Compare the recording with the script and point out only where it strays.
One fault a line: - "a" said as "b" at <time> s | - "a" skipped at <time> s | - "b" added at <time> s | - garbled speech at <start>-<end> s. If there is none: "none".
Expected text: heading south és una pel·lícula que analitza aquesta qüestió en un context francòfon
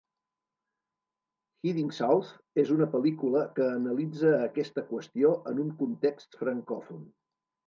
none